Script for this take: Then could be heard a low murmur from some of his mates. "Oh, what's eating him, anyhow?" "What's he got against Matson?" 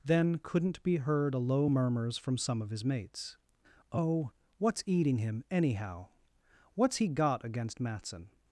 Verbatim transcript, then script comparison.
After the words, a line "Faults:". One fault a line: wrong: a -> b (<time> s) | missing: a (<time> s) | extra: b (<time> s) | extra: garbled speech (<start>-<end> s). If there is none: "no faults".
Then couldn't be heard a low murmurs from some of his mates. "Oh, what's eating him, anyhow?" "What's he got against Matson?"
Faults:
wrong: could -> couldn't (0.4 s)
wrong: murmur -> murmurs (1.7 s)